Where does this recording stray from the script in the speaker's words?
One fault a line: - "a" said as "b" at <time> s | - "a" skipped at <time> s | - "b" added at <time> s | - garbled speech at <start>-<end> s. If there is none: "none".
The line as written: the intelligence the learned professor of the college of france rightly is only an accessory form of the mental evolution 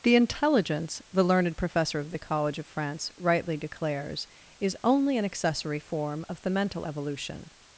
- "declares" added at 3.5 s